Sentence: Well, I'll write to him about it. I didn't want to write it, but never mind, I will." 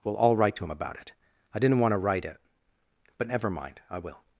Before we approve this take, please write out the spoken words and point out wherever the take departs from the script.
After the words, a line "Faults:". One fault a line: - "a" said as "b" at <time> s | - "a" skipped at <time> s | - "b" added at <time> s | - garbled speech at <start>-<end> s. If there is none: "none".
Well, I'll write to him about it. I didn't want to write it, but never mind, I will."
Faults:
none